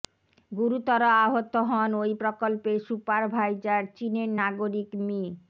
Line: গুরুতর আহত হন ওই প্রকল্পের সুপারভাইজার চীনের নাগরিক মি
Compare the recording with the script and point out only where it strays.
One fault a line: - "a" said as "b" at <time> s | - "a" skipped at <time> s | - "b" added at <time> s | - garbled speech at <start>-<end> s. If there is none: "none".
none